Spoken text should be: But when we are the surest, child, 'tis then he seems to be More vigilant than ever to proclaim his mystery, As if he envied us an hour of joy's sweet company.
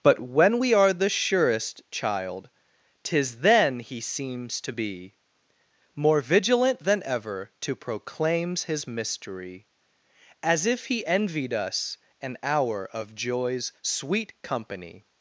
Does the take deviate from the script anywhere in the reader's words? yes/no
yes